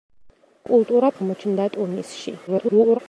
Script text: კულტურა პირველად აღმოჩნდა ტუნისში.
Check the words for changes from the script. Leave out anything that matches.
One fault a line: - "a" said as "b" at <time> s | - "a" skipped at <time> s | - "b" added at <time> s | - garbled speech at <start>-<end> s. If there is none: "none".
- "პირველად" skipped at 1.1 s
- garbled speech at 2.5-3.0 s